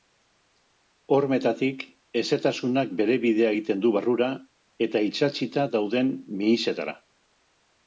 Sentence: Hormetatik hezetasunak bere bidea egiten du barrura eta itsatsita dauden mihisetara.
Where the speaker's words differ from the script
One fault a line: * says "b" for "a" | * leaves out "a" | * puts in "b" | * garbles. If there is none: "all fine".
all fine